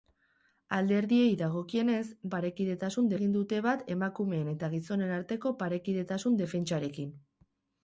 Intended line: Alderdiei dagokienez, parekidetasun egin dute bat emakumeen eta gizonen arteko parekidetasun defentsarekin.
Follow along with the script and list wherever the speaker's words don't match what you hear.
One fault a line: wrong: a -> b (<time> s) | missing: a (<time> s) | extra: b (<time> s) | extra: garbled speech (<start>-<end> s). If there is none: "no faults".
no faults